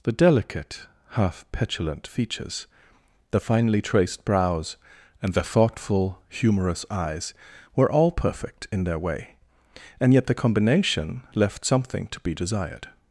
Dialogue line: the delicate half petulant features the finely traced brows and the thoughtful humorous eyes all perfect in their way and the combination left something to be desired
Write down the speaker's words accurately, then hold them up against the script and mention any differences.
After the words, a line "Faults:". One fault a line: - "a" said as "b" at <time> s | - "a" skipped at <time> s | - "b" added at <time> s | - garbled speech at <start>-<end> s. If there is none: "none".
the delicate half petulant features the finely traced brows and the thoughtful humorous eyes were all perfect in their way and yet the combination left something to be desired
Faults:
- "were" added at 7.7 s
- "yet" added at 10.1 s